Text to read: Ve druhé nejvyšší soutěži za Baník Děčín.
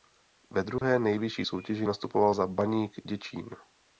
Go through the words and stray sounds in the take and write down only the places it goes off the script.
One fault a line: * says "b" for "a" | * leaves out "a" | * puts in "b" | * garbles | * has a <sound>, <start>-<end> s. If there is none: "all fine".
* has a dropout, 0.8-0.8 s
* puts in "nastupoval"